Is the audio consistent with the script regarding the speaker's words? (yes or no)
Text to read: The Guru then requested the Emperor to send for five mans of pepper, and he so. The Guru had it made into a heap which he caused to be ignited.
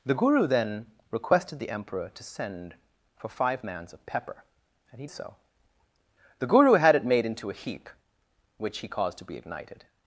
yes